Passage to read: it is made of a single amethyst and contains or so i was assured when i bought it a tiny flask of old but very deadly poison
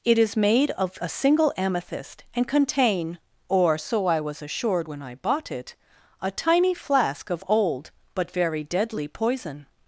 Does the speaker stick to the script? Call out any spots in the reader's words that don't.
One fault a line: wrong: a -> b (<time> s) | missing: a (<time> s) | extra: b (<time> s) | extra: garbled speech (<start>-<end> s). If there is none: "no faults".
wrong: contains -> contain (2.5 s)